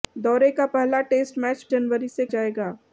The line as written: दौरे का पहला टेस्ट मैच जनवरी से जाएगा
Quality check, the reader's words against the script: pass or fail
pass